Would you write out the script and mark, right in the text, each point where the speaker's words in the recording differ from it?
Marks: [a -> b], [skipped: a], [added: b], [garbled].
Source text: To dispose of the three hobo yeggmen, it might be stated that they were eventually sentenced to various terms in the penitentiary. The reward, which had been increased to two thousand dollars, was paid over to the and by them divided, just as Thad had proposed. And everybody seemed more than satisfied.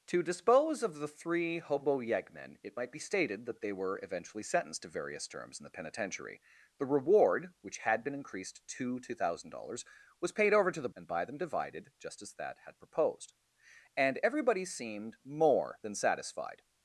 To dispose of the three hobo yeggmen, it might be stated that they were eventually sentenced to various terms in the penitentiary. The reward, which had been increased to two thousand dollars, was paid over to the and by them divided, just as Thad had proposed. And everybody seemed more than satisfied.